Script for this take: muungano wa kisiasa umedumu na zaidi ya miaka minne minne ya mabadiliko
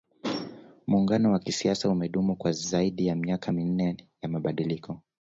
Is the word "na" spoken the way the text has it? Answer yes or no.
no